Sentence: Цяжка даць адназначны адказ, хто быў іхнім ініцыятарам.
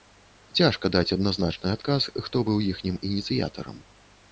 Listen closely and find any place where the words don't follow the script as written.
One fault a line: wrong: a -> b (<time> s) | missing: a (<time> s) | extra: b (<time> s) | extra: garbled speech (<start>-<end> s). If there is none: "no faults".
no faults